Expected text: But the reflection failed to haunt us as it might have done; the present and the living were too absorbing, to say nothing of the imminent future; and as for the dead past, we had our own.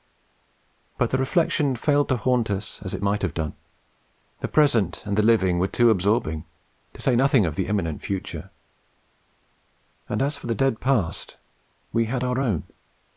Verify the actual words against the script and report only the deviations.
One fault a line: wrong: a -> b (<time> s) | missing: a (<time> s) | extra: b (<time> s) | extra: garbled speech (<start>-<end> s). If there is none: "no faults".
no faults